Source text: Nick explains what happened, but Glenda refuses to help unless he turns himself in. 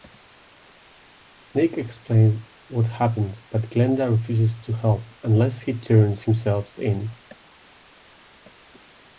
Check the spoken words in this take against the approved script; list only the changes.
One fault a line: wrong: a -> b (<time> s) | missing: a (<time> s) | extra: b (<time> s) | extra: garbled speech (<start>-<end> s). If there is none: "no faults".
no faults